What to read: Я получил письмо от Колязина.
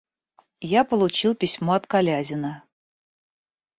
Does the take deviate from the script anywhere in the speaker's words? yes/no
no